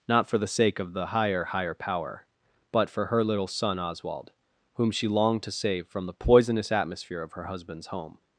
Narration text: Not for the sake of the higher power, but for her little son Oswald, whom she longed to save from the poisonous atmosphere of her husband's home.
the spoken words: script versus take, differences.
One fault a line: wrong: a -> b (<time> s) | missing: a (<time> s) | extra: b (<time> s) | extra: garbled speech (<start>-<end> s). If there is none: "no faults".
extra: higher (1.4 s)